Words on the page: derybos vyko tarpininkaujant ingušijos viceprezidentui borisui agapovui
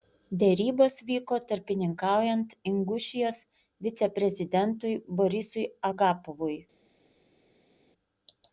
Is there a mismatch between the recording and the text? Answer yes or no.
no